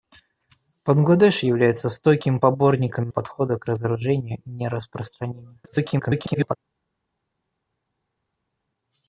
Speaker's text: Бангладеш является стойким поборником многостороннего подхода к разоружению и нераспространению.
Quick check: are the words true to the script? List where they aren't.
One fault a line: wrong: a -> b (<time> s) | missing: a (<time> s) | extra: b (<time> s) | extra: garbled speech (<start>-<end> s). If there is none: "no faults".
missing: многостороннего (3.1 s)
extra: garbled speech (5.6-6.6 s)